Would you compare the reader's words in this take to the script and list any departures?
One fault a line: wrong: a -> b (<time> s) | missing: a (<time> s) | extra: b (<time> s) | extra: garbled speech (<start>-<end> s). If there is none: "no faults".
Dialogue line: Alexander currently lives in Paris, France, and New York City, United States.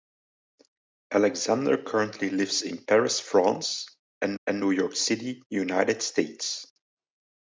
extra: and (4.4 s)